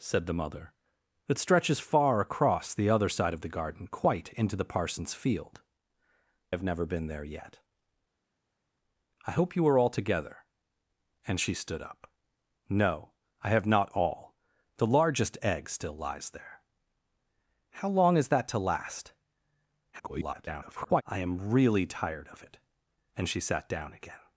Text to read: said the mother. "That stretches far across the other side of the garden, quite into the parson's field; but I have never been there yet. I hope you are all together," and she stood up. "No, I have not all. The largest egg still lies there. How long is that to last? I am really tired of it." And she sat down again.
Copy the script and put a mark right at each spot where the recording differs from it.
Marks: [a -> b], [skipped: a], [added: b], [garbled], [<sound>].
said the mother. "That stretches far across the other side of the garden, quite into the parson's field; [skipped: but I] have never been there yet. I hope you are all together," and she stood up. "No, I have not all. The largest egg still lies there. How long is that to last? [garbled] I am really tired of it." And she sat down again.